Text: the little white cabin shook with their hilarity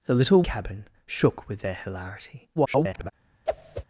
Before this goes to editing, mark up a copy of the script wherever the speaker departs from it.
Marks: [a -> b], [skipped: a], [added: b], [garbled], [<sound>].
the little [skipped: white] cabin shook with their hilarity [garbled] [whoosh]